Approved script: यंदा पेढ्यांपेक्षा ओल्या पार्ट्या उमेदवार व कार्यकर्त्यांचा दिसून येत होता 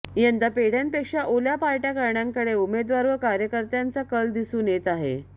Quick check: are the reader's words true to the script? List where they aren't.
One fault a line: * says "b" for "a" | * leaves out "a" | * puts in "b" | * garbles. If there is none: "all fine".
* puts in "करण्याकडे"
* puts in "कल"
* says "आहे" for "होता"